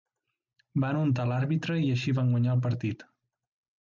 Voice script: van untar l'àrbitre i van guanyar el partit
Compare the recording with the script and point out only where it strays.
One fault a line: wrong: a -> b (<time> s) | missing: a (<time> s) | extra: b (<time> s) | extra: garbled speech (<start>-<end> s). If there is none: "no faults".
extra: així (2.0 s)